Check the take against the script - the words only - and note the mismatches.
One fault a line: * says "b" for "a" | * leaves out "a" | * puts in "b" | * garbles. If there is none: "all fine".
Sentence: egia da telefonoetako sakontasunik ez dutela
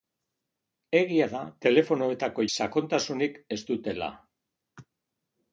all fine